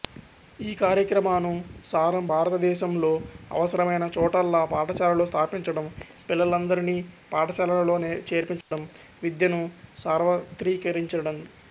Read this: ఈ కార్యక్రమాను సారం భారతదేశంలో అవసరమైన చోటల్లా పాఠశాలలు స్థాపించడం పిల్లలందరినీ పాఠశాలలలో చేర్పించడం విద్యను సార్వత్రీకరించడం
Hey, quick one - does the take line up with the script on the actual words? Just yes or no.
yes